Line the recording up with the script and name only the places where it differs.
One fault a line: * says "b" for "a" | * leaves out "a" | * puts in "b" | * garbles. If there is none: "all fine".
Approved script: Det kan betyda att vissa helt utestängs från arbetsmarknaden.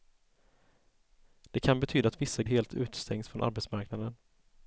all fine